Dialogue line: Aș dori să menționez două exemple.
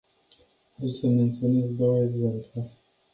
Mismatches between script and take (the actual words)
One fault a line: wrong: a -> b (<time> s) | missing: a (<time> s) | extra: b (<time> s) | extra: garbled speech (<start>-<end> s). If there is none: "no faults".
missing: dori (0.9 s)